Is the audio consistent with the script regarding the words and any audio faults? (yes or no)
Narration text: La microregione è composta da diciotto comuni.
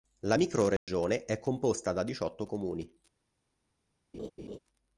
no